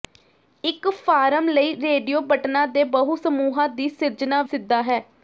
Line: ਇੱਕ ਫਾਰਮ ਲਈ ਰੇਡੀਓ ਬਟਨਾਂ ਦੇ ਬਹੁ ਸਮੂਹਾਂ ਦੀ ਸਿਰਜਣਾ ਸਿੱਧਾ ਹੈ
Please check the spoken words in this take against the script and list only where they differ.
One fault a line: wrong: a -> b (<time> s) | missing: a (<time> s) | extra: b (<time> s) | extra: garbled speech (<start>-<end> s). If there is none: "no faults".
no faults